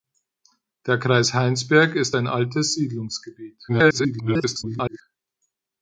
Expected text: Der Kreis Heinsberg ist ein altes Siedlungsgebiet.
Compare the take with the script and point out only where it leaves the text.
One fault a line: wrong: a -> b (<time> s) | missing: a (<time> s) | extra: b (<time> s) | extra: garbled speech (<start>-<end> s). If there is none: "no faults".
extra: garbled speech (3.7-5.0 s)